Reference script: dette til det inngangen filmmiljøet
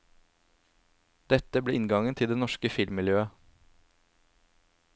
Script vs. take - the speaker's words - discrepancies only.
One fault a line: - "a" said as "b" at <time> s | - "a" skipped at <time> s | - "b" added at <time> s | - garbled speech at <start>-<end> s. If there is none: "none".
- "ble inngangen" added at 1.6 s
- "inngangen" said as "norske" at 2.4 s